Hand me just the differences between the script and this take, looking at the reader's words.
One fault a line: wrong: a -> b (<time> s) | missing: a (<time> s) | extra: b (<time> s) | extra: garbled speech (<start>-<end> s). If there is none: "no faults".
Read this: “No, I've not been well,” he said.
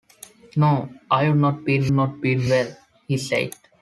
extra: not been (1.9 s)